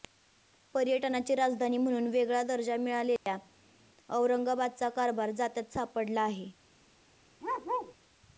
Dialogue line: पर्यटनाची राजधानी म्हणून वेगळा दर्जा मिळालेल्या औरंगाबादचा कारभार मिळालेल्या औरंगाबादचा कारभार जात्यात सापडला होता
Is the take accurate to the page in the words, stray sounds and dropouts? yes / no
no